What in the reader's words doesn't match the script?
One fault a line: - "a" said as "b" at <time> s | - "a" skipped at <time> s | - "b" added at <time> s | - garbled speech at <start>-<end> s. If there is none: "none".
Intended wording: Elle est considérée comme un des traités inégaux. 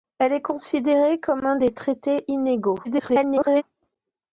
- garbled speech at 2.8-3.6 s